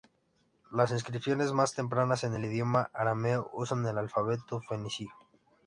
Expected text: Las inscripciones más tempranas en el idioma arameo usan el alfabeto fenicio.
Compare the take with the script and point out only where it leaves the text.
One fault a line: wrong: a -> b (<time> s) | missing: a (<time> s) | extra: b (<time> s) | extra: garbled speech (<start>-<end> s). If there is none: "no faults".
no faults